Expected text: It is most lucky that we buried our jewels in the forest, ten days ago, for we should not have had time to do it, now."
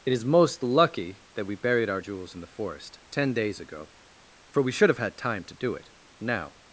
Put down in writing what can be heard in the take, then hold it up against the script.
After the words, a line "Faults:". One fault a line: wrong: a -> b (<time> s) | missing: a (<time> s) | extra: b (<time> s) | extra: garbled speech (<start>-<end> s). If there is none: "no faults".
It is most lucky that we buried our jewels in the forest, ten days ago, for we should have had time to do it, now."
Faults:
missing: not (4.9 s)